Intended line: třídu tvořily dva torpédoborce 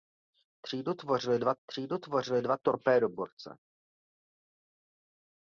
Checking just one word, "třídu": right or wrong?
right